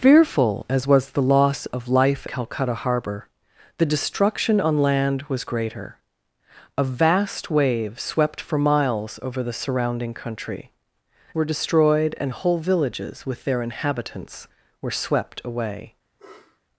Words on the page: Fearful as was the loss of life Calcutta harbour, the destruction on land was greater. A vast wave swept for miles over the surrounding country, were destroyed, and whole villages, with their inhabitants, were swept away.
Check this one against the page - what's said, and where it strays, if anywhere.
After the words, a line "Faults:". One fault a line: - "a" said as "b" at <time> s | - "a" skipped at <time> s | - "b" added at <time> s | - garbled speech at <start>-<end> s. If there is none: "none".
Fearful as was the loss of life Calcutta harbour, the destruction on land was greater. A vast wave swept for miles over the surrounding country, were destroyed, and whole villages, with their inhabitants, were swept away.
Faults:
none